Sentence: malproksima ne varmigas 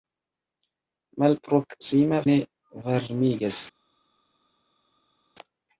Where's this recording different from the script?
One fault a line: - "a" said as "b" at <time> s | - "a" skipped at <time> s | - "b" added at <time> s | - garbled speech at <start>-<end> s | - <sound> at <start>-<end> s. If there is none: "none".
none